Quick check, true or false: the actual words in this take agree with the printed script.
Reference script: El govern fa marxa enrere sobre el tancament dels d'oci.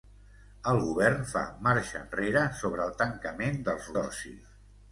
true